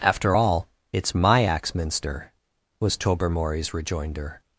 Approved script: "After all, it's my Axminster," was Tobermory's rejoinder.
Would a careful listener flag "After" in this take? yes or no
no